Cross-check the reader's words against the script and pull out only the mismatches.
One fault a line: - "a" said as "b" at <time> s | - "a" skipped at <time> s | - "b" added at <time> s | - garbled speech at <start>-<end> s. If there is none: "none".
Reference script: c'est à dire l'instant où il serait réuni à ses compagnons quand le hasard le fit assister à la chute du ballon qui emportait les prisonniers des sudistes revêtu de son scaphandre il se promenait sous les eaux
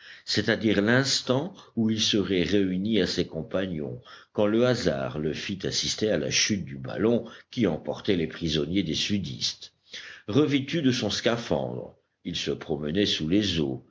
none